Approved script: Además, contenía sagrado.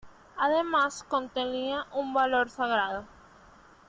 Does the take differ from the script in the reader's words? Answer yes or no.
yes